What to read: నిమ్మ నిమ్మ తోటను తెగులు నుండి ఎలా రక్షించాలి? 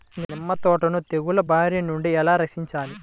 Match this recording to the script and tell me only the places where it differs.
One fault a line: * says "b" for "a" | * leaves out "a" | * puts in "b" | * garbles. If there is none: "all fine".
* leaves out "నిమ్మ"
* puts in "బారి"